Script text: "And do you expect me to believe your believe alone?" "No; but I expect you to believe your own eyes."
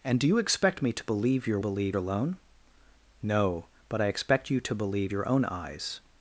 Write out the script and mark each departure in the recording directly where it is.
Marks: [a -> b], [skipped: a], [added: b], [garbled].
"And do you expect me to believe your believe alone?" "No; but I expect you to believe your own eyes."